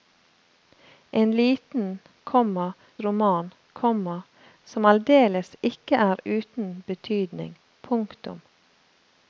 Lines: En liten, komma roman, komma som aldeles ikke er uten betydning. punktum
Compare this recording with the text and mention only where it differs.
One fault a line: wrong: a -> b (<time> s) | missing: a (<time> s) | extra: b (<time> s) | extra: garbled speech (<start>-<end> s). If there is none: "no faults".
no faults